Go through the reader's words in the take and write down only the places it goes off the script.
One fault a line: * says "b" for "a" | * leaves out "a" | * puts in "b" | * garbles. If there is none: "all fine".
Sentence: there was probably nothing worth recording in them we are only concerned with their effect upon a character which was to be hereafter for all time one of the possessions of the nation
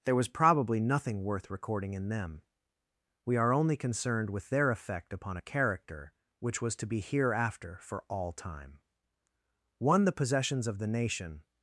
* leaves out "of"